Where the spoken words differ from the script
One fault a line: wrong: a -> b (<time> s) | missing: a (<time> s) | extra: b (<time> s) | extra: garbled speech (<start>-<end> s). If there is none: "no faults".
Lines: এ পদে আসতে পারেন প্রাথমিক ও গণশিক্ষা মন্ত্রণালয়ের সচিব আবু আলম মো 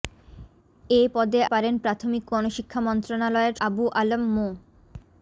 missing: আসতে (1.4 s)
missing: ও (2.2 s)
missing: সচিব (3.6 s)